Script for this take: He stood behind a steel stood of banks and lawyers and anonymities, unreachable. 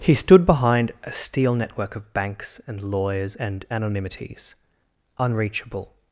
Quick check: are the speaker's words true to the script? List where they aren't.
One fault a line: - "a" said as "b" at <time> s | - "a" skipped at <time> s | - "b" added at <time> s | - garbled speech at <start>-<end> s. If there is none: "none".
- "stood" said as "network" at 1.5 s